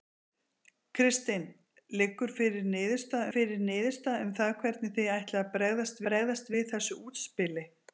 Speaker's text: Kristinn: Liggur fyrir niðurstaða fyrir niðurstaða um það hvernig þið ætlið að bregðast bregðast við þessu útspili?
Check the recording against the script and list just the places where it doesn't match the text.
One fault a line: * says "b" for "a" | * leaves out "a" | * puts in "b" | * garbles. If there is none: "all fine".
all fine